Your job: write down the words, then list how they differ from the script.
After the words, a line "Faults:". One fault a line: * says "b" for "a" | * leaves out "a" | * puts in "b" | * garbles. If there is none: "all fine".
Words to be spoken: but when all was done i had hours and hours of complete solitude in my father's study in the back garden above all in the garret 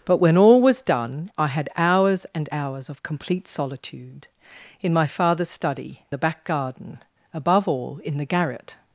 but when all was done i had hours and hours of complete solitude in my father's study the back garden above all in the garret
Faults:
* leaves out "in"